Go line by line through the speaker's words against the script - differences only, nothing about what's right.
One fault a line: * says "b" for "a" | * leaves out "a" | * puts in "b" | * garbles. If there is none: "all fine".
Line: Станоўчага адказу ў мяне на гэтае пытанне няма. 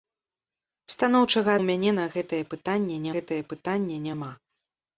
* leaves out "адказу"
* puts in "гэтае пытанне"